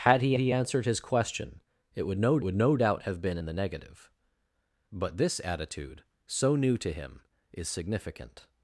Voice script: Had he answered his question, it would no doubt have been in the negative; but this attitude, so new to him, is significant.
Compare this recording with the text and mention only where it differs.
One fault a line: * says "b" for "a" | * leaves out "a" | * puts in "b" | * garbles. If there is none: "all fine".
* puts in "he"
* puts in "would no"